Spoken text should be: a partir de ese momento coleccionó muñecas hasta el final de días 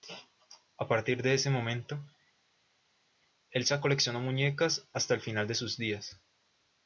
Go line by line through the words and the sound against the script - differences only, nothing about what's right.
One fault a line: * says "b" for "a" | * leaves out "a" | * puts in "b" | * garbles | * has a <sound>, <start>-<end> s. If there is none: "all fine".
* puts in "elsa"
* puts in "sus"